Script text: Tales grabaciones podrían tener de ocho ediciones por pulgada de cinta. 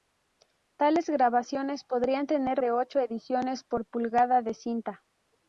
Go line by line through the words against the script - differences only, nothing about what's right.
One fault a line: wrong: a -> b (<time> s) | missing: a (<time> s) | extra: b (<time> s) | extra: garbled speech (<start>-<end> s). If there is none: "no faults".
no faults